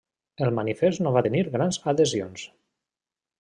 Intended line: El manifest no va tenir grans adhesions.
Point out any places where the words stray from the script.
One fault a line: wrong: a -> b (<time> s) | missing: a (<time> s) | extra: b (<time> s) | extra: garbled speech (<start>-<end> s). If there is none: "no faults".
no faults